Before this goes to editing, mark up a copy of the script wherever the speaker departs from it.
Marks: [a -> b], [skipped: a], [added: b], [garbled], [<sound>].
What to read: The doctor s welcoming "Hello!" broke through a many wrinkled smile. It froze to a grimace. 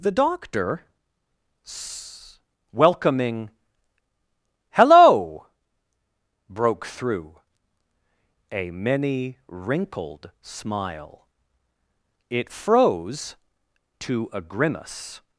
The doctor s welcoming "Hello!" broke through a many wrinkled smile. It froze to a grimace.